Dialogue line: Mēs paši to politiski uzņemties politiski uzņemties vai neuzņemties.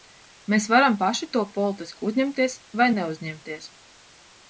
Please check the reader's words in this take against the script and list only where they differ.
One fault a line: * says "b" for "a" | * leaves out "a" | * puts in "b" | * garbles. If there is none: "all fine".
* puts in "varam"
* leaves out "politiski uzņemties"